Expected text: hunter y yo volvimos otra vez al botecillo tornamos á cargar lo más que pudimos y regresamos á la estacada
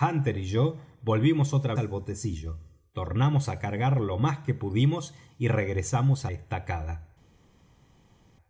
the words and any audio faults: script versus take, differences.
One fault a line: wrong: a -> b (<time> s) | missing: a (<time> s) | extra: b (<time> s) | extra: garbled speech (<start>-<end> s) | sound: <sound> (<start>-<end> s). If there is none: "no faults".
missing: vez (1.8 s)
missing: la (6.3 s)